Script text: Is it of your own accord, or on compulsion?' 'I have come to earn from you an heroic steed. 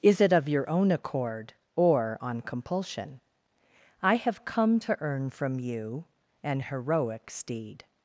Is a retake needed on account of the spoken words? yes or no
no